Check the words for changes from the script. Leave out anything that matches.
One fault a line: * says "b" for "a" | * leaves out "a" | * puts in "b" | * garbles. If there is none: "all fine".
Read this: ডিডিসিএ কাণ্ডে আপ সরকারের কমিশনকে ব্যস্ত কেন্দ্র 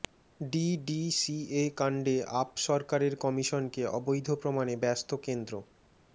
* puts in "অবৈধ প্রমাণে"